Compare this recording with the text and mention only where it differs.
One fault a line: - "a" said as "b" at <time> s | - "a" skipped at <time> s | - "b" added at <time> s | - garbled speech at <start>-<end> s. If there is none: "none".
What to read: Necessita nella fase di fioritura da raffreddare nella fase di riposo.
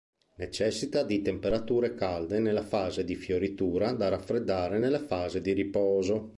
- "di temperature calde" added at 1.0 s